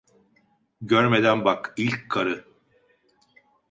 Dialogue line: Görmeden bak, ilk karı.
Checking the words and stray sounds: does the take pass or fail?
pass